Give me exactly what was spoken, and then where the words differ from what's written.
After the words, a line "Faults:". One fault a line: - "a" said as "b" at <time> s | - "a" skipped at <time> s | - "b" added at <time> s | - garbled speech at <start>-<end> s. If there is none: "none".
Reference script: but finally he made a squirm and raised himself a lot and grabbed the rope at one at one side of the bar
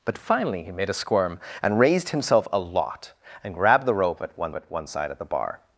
but finally he made a squirm and raised himself a lot and grabbed the rope at one at one side of the bar
Faults:
none